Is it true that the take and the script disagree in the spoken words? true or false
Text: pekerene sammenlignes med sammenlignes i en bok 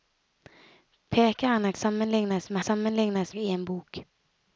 false